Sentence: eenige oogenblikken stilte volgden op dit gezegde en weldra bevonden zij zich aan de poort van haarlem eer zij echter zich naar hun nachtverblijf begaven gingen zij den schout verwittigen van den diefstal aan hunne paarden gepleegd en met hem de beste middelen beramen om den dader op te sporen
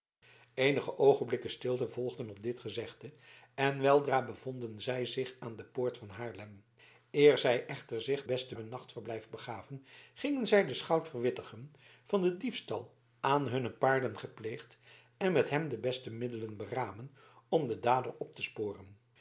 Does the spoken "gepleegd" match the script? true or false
true